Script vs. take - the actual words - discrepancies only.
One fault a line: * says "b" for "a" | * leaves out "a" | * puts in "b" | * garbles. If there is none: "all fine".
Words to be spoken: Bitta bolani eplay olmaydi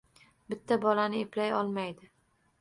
all fine